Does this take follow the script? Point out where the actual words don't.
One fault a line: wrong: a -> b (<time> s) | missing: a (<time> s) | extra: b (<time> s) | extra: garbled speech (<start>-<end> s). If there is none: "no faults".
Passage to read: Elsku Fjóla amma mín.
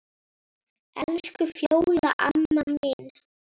no faults